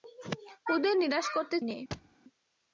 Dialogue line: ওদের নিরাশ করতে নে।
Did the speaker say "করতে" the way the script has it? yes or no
yes